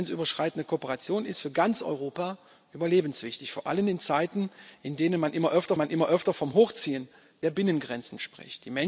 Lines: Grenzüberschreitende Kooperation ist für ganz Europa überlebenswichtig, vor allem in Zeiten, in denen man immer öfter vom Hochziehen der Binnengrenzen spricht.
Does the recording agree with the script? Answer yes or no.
no